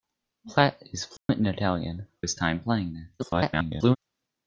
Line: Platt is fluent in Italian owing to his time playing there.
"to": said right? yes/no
no